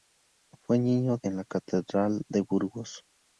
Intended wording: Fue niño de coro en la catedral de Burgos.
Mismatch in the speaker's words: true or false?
true